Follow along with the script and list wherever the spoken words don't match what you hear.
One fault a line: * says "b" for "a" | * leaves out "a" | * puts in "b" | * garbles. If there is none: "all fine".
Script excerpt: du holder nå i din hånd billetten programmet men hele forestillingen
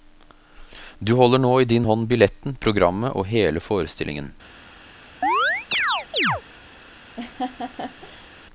* says "og" for "men"